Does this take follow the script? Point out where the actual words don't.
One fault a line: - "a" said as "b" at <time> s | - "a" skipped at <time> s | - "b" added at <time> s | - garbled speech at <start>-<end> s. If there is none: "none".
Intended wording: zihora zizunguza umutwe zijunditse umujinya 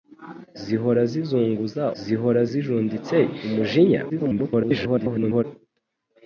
- "umutwe" said as "zihora" at 2.0 s
- garbled speech at 4.1-5.4 s